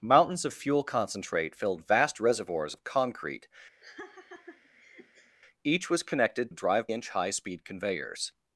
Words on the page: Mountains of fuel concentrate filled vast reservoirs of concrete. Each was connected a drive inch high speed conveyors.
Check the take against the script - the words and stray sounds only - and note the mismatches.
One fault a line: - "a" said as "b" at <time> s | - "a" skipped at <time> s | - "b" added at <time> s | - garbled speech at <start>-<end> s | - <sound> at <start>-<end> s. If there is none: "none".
- laugh at 3.8-5.4 s